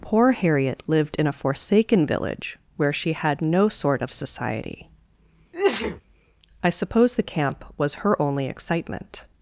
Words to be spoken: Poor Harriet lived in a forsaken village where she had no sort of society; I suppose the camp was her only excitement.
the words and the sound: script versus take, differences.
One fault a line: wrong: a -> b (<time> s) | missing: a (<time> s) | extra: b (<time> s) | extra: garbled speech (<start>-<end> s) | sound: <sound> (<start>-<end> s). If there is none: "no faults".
sound: sneeze (5.5-6.0 s)